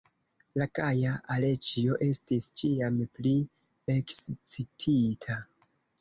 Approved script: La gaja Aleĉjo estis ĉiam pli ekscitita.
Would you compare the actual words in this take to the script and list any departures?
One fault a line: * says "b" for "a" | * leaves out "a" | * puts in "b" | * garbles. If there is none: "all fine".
all fine